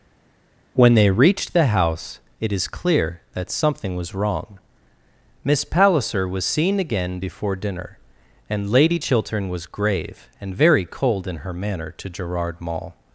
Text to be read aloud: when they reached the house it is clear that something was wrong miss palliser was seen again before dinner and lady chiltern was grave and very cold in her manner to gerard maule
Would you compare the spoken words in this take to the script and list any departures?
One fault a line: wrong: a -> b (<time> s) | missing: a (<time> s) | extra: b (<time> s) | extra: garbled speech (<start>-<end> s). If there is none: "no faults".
no faults